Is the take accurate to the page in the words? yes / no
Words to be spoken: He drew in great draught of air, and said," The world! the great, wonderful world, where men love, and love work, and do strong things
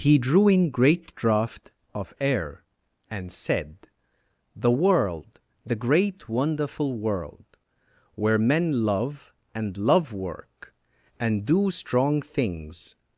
yes